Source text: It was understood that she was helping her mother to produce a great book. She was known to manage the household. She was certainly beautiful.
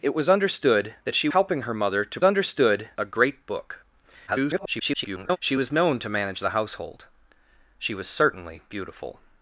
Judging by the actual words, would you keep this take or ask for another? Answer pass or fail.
fail